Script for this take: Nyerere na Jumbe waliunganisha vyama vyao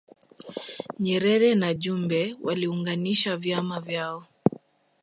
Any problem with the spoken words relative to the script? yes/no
no